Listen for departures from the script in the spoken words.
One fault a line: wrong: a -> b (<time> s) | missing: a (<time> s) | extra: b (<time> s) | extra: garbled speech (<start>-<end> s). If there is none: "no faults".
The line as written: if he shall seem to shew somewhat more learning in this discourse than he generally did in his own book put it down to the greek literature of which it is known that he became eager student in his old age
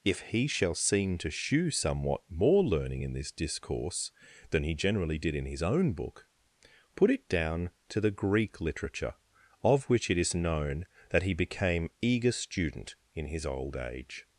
no faults